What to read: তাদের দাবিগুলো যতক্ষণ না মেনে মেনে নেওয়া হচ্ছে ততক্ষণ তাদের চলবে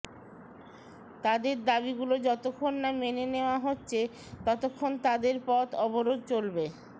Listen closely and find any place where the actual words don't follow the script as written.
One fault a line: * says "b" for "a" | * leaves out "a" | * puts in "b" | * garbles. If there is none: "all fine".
* leaves out "মেনে"
* puts in "পথ অবরোধ"